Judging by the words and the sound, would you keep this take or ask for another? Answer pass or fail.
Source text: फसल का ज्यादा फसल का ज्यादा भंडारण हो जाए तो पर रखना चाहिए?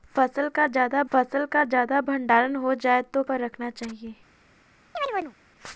fail